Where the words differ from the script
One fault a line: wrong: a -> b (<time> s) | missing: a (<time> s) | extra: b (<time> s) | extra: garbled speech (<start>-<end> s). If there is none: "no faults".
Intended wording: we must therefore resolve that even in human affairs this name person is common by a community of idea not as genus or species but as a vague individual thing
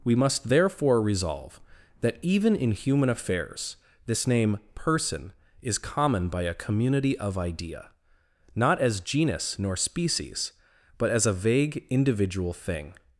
wrong: or -> nor (9.6 s)